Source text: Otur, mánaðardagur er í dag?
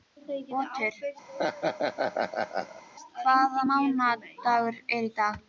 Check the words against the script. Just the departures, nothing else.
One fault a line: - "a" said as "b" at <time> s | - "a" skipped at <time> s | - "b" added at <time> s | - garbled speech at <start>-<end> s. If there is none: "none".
- "hvaða" added at 3.2 s